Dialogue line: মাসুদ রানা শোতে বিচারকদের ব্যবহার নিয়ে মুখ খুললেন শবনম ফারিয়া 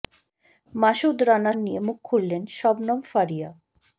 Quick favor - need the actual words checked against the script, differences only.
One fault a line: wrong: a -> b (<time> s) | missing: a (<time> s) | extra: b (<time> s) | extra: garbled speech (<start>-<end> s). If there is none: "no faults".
missing: শোতে বিচারকদের ব্যবহার (1.5 s)